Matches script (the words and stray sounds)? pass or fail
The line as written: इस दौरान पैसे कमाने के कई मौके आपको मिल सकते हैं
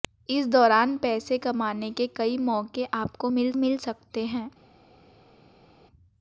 fail